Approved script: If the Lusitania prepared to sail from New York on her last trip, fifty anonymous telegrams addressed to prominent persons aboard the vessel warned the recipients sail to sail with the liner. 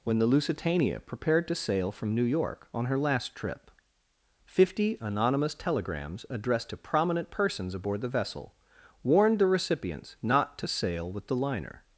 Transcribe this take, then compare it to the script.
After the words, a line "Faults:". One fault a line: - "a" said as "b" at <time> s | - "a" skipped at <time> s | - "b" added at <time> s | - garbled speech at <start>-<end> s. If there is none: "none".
When the Lusitania prepared to sail from New York on her last trip, fifty anonymous telegrams addressed to prominent persons aboard the vessel warned the recipients not to sail with the liner.
Faults:
- "If" said as "When" at 0.0 s
- "sail" said as "not" at 10.2 s